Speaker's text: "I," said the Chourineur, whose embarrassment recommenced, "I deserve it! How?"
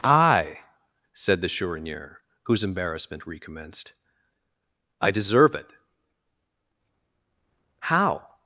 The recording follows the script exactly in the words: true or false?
true